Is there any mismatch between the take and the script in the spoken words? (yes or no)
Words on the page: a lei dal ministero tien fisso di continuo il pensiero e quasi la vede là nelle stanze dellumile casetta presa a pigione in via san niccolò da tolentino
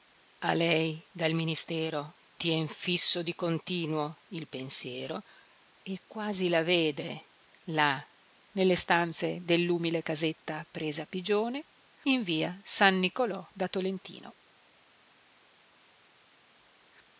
no